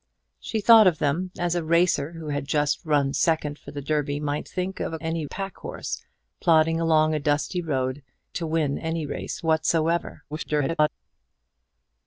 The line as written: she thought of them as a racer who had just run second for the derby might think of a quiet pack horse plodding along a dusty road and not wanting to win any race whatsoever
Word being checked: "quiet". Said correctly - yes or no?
no